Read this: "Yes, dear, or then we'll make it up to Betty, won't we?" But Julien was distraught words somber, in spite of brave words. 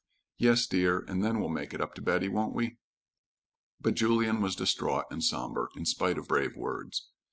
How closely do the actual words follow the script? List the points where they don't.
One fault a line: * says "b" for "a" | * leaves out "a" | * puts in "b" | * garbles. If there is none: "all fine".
* says "and" for "or"
* says "and" for "words"